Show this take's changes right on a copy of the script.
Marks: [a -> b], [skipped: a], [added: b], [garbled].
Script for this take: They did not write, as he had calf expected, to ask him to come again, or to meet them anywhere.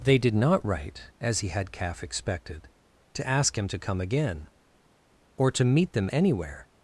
They did not write, as he had calf expected, to ask him to come again, or to meet them anywhere.